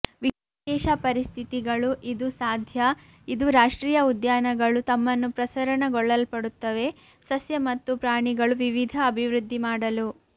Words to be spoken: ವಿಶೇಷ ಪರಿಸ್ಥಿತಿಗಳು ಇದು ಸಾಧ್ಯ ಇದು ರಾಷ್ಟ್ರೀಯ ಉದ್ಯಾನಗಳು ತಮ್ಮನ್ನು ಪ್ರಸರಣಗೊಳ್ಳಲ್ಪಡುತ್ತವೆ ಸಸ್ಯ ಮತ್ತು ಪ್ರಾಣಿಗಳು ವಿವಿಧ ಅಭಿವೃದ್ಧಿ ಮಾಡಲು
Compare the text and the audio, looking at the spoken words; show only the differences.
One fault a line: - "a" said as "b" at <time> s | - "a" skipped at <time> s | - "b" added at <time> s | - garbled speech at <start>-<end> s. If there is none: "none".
none